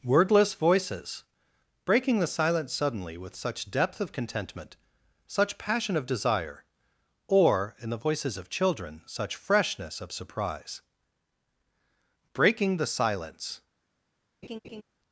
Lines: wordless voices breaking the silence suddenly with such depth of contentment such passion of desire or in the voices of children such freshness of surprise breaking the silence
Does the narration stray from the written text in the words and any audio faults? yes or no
yes